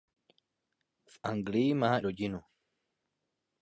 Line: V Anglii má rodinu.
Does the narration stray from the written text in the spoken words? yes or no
no